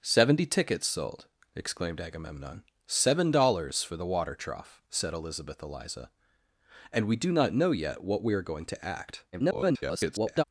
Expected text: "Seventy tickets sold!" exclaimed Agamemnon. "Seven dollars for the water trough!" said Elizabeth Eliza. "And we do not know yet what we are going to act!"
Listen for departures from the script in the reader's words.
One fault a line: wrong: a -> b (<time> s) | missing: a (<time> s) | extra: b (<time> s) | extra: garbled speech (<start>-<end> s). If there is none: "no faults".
extra: garbled speech (9.3-10.4 s)